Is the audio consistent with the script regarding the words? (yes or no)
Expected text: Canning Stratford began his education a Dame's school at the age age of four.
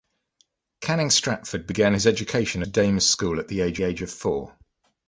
yes